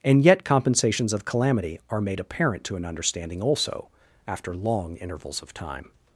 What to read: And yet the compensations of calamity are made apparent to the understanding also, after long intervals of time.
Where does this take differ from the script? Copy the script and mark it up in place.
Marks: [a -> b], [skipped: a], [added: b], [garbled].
And yet [skipped: the] compensations of calamity are made apparent to [the -> an] understanding also, after long intervals of time.